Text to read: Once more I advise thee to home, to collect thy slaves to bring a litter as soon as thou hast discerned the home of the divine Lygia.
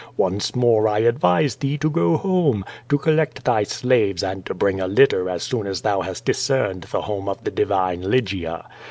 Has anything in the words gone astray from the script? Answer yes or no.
yes